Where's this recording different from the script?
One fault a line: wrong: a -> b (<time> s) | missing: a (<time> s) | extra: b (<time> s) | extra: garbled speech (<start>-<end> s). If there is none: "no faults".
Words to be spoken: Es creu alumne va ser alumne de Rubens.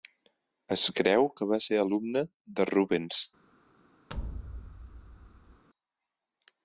wrong: alumne -> que (1.4 s)